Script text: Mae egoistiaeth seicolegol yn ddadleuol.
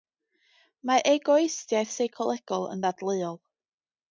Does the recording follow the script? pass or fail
pass